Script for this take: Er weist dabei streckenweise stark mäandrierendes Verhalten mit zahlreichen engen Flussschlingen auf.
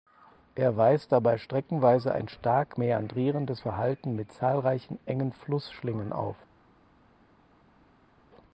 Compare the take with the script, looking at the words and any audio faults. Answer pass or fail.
fail